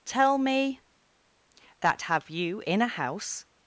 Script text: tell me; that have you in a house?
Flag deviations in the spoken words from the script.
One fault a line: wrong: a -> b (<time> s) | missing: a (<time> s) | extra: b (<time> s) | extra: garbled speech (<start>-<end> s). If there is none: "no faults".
no faults